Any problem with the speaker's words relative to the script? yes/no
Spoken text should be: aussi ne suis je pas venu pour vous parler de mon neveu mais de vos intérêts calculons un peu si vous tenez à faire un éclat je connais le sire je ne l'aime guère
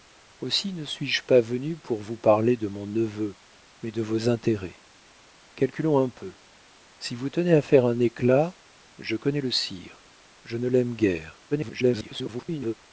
yes